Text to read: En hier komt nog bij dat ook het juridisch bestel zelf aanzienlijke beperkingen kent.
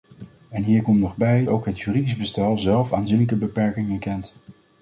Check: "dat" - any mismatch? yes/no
yes